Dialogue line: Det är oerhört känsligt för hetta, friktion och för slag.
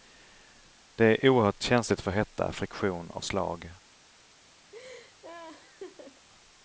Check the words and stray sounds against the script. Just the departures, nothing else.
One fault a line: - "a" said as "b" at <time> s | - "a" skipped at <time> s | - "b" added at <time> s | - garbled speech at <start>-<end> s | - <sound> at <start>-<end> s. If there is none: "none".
- "för" skipped at 3.2 s
- laugh at 4.7-6.3 s